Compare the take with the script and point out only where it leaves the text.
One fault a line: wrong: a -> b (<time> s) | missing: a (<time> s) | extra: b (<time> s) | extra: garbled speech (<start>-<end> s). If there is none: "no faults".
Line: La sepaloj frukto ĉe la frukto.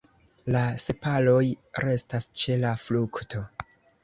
wrong: frukto -> restas (1.9 s)